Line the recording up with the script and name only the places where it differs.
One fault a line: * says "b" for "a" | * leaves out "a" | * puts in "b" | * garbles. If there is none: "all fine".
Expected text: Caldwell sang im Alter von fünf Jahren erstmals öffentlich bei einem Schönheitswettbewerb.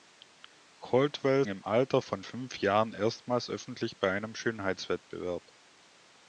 * leaves out "sang"